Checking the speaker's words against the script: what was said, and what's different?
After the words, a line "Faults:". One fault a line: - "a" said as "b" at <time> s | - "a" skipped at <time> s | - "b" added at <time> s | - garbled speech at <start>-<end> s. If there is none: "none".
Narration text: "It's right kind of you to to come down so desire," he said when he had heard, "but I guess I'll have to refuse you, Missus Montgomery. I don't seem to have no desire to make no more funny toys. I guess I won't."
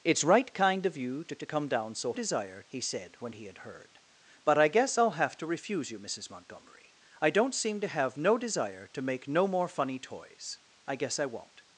"It's right kind of you to to come down so desire," he said when he had heard, "but I guess I'll have to refuse you, Missus Montgomery. I don't seem to have no desire to make no more funny toys. I guess I won't."
Faults:
none